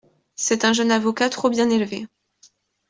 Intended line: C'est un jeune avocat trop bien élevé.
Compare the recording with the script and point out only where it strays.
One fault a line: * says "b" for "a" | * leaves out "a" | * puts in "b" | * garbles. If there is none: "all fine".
all fine